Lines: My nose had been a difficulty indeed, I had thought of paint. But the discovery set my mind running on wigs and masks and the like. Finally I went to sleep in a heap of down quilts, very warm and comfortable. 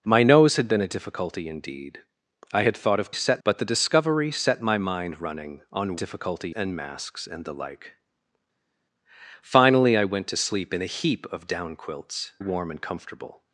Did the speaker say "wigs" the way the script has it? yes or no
no